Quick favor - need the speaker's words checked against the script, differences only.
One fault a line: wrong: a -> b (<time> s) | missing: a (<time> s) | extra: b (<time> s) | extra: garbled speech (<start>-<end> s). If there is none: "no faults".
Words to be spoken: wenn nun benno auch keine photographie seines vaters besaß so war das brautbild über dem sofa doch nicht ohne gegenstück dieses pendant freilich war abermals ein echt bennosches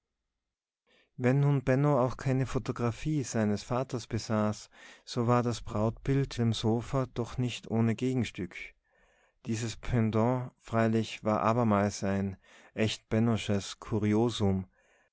missing: über (6.4 s)